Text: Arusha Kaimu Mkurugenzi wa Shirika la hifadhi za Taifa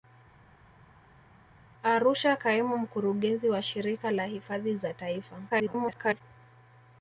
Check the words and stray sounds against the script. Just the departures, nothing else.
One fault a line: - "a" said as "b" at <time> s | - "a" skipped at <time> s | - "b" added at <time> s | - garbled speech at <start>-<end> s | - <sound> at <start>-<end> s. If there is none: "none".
- garbled speech at 5.5-6.2 s